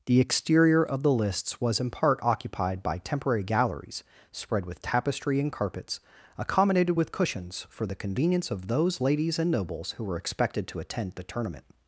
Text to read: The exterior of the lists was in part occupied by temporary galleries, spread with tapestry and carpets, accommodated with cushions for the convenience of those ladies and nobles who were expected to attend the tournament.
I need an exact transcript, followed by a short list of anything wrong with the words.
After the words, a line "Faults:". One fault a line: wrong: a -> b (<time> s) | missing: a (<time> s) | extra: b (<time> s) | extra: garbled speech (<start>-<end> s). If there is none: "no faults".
The exterior of the lists was in part occupied by temporary galleries, spread with tapestry and carpets, accommodated with cushions for the convenience of those ladies and nobles who were expected to attend the tournament.
Faults:
no faults